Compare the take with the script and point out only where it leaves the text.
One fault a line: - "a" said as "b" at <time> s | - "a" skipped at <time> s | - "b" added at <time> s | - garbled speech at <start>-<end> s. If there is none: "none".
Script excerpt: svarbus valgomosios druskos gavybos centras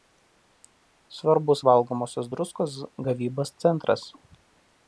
none